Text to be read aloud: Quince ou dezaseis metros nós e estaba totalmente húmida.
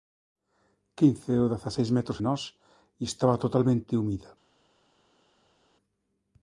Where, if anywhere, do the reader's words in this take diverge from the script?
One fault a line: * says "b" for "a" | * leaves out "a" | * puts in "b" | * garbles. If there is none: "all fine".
all fine